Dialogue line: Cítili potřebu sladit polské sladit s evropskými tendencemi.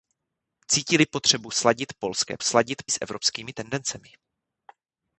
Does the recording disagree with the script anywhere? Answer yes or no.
no